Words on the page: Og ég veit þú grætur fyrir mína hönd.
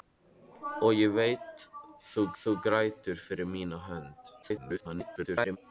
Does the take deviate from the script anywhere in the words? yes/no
yes